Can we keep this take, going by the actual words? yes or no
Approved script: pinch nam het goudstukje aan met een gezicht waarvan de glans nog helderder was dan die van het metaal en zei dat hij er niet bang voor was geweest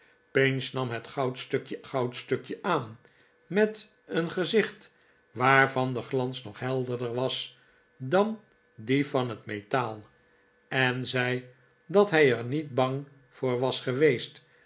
no